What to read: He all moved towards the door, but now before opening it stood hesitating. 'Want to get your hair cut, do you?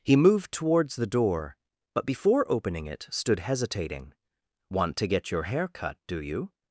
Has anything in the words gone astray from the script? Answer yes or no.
yes